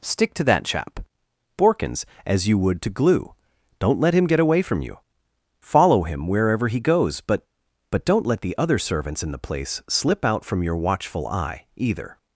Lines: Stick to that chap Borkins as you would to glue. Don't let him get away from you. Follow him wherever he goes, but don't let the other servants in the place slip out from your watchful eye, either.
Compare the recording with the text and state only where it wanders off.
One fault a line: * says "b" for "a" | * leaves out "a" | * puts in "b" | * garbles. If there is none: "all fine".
* puts in "but"